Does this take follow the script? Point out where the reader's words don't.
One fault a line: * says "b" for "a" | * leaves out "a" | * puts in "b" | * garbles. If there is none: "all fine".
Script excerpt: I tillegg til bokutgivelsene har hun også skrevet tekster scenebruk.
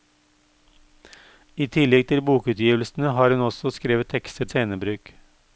all fine